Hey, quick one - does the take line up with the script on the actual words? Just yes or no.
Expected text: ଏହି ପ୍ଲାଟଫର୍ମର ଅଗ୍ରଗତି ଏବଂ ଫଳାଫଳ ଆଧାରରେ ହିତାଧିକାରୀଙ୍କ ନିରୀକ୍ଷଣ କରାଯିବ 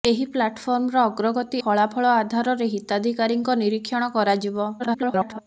no